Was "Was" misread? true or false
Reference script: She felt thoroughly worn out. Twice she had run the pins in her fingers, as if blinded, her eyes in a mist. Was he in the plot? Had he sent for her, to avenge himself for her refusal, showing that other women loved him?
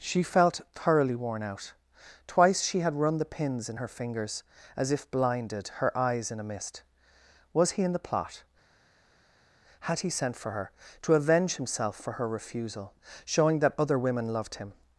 false